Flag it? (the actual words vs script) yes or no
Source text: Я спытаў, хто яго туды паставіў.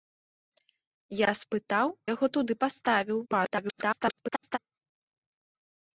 yes